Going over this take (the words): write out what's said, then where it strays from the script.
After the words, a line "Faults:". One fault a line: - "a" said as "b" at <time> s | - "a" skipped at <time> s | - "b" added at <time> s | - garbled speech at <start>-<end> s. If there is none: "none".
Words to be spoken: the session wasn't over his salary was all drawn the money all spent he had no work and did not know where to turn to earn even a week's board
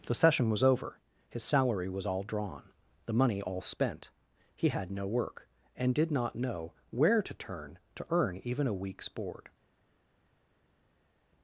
the session was over his salary was all drawn the money all spent he had no work and did not know where to turn to earn even a week's board
Faults:
- "wasn't" said as "was" at 0.5 s